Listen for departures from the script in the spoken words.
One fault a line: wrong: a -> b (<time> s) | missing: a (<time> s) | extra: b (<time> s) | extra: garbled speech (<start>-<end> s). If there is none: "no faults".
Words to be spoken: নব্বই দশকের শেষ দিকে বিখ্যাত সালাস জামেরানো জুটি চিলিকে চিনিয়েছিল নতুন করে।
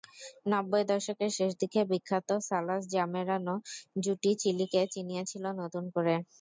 no faults